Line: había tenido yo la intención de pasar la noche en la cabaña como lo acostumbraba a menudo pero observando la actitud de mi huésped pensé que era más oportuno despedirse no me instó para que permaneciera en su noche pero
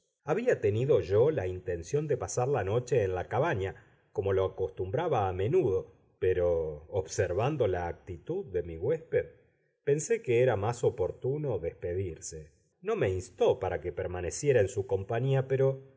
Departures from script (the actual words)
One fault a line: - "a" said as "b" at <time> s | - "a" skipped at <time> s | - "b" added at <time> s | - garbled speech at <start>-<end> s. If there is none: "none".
- "noche" said as "compañía" at 14.9 s